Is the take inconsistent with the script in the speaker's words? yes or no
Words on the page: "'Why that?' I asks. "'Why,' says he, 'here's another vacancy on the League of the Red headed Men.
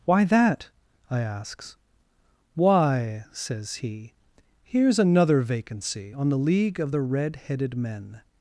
no